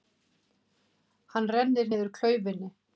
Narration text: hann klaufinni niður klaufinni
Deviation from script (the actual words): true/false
true